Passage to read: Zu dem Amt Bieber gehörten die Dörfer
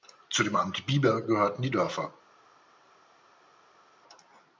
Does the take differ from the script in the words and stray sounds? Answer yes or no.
no